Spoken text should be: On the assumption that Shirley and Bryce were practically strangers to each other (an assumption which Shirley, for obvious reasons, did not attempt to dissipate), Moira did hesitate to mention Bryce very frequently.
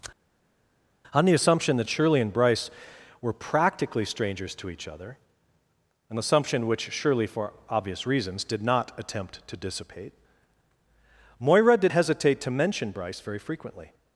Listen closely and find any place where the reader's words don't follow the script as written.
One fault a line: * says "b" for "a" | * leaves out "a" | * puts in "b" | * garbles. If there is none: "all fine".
all fine